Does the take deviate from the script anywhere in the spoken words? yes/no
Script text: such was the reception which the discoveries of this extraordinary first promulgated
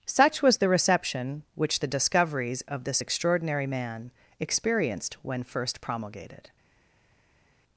yes